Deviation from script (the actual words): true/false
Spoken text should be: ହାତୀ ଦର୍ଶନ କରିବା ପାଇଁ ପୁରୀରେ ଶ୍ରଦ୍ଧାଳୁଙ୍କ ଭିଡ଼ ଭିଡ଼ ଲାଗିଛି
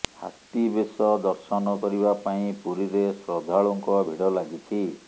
true